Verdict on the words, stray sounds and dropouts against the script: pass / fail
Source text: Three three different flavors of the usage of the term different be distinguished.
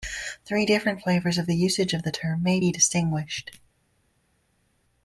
fail